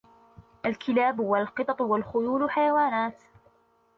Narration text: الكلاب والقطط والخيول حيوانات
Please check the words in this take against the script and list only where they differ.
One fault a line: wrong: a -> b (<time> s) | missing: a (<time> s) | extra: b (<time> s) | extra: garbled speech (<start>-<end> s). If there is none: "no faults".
no faults